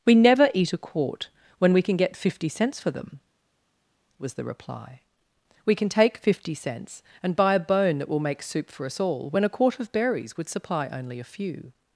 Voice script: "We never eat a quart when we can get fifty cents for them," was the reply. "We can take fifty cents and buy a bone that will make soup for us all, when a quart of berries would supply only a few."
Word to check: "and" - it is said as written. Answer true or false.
true